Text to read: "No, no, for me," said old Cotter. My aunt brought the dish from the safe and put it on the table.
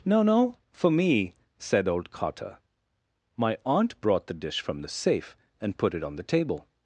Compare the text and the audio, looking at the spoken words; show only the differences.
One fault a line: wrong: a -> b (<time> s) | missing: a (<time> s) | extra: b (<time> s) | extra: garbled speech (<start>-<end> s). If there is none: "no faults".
no faults